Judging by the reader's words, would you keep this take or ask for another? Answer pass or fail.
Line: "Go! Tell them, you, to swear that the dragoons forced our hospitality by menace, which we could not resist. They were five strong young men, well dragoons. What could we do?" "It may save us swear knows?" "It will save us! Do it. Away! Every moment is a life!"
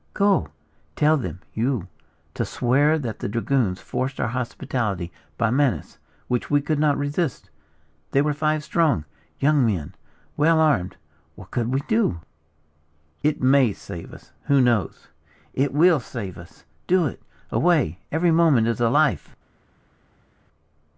fail